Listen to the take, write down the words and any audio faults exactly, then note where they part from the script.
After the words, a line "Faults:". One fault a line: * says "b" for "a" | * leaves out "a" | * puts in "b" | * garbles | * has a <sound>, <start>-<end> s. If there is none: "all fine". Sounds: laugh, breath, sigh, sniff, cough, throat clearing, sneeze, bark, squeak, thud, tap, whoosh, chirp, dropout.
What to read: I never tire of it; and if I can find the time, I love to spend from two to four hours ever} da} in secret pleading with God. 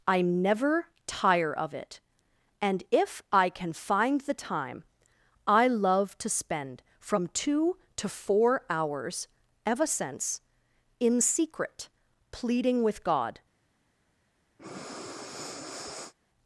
I never tire of it; and if I can find the time, I love to spend from two to four hours ever} since} in secret pleading with God.
Faults:
* says "since" for "da"
* has a breath, 14.6-16.1 s